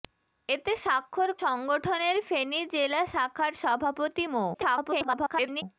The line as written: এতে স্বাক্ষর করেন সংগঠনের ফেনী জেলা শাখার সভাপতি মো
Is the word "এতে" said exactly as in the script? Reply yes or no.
yes